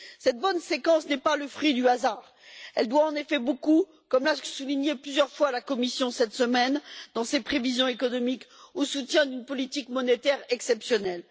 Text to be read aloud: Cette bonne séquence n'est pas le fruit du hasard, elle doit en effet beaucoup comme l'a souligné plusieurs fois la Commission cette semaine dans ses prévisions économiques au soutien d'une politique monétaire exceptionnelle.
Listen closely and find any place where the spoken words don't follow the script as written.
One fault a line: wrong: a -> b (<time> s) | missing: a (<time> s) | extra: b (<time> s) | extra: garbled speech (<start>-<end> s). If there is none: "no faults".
no faults